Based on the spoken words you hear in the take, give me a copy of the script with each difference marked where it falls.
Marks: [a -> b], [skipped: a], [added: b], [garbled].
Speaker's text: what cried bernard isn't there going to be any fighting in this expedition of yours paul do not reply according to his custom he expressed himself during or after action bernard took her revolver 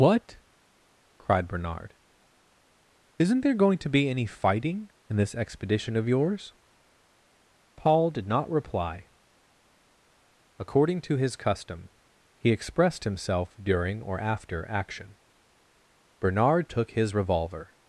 what cried bernard isn't there going to be any fighting in this expedition of yours paul [do -> did] not reply according to his custom he expressed himself during or after action bernard took [her -> his] revolver